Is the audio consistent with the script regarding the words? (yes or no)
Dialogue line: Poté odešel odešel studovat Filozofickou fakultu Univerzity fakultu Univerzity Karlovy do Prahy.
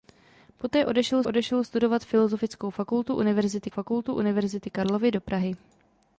yes